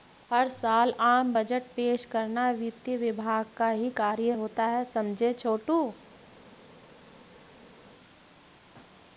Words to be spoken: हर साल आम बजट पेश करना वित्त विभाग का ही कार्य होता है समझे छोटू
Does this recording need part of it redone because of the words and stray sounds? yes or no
no